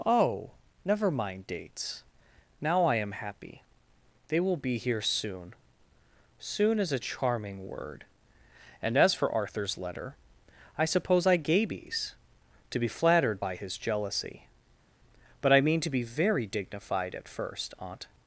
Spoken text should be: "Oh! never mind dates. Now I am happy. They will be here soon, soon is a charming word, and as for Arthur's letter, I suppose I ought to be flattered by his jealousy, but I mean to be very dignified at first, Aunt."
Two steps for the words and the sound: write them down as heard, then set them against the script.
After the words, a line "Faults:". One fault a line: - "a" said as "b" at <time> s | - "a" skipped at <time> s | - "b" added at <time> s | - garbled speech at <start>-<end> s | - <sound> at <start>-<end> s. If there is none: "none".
"Oh! never mind dates. Now I am happy. They will be here soon, soon is a charming word, and as for Arthur's letter, I suppose I gabies to be flattered by his jealousy, but I mean to be very dignified at first, Aunt."
Faults:
- "ought" said as "gabies" at 11.4 s